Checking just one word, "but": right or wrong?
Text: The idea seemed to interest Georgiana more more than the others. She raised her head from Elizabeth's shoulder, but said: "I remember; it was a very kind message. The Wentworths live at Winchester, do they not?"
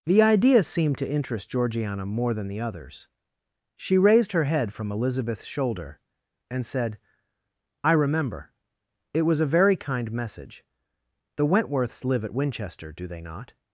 wrong